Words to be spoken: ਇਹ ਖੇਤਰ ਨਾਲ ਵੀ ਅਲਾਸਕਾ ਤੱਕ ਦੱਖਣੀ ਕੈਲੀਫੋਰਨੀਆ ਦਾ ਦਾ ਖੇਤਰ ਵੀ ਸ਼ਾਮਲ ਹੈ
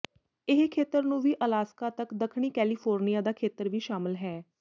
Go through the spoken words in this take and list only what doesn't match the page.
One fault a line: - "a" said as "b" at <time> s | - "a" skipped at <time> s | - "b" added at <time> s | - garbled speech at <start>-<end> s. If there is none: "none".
- "ਨਾਲ" said as "ਨੂੰ" at 1.0 s
- "ਦਾ" skipped at 3.3 s